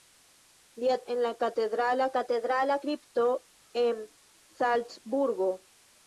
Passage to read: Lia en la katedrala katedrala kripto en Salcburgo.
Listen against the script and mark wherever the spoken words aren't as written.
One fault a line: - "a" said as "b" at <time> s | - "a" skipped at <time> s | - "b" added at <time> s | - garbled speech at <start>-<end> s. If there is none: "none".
none